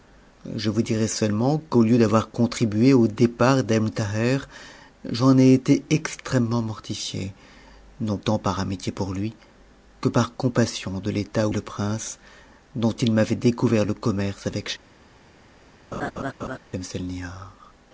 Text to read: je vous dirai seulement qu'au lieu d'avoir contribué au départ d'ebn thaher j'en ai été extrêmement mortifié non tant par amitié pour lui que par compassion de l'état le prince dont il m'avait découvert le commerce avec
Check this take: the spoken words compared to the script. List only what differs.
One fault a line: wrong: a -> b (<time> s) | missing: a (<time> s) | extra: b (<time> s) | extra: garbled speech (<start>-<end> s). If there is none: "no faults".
no faults